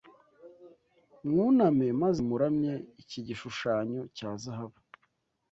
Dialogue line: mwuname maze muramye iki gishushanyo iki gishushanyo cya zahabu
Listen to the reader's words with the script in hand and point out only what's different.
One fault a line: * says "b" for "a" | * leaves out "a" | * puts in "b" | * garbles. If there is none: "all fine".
* leaves out "iki gishushanyo"